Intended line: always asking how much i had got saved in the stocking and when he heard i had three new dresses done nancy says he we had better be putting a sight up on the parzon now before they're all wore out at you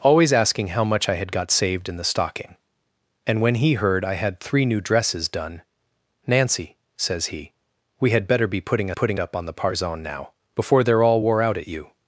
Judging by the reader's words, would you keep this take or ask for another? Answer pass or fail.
fail